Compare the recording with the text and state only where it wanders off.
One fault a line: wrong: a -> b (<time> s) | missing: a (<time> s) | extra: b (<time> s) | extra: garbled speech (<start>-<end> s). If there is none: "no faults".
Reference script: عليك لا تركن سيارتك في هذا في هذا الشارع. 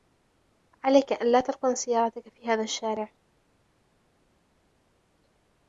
extra: أن (1.1 s)
missing: في هذا (2.6 s)